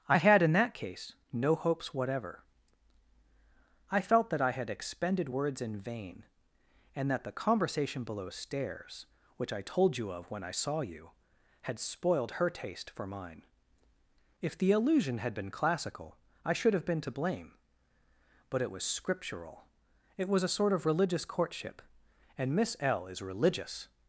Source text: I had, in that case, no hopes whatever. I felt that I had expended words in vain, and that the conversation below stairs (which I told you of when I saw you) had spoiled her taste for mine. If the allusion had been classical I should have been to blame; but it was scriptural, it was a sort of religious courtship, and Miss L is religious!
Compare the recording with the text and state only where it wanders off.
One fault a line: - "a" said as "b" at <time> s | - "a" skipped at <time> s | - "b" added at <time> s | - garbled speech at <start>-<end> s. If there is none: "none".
none